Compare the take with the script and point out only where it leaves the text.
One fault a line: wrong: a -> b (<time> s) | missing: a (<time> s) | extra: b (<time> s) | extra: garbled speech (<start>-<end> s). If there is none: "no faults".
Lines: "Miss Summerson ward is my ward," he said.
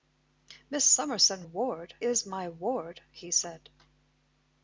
no faults